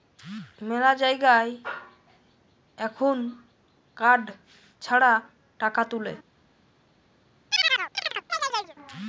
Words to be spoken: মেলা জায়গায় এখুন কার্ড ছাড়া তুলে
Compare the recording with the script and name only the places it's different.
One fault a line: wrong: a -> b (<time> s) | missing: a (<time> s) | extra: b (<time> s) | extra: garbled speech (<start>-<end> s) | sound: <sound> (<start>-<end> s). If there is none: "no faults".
extra: টাকা (5.6 s)
sound: chirp (7.5-8.8 s)